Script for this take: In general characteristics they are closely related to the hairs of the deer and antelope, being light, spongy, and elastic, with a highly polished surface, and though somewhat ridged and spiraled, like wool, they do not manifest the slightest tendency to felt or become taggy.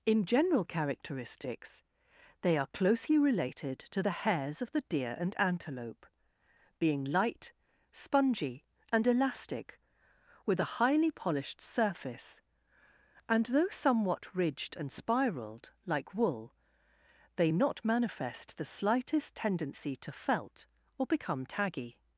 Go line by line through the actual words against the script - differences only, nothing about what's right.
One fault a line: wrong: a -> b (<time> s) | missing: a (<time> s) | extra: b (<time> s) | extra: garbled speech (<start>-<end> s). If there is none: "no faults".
missing: do (17.5 s)